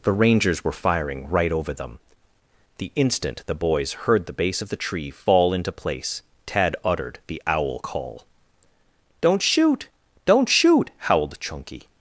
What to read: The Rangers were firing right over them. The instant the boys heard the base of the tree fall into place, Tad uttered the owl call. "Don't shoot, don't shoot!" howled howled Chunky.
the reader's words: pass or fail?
fail